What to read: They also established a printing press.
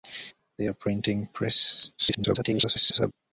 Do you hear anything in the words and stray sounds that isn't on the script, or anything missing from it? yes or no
yes